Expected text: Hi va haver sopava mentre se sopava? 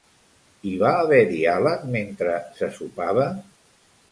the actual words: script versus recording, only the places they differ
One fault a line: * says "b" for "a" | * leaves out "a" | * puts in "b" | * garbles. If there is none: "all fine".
* says "diàleg" for "sopava"